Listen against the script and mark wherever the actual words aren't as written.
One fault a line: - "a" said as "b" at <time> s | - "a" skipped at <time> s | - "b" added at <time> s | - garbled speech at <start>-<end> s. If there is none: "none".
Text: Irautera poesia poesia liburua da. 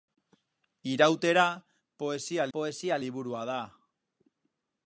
none